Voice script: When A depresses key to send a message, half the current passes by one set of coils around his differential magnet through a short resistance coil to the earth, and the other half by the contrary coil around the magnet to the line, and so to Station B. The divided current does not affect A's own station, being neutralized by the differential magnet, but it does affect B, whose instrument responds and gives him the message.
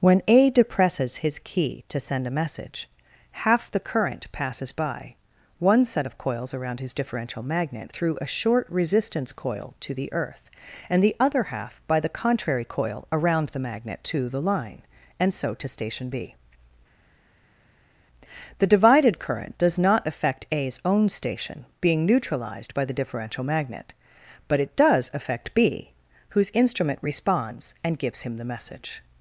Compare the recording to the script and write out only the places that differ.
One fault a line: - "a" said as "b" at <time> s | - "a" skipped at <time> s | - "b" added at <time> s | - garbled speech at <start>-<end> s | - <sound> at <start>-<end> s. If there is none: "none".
- "his" added at 1.2 s